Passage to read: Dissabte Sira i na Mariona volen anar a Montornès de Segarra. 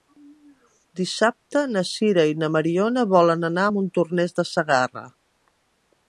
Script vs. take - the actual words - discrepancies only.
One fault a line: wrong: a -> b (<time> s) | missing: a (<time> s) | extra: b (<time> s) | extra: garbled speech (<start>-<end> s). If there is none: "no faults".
extra: na (1.7 s)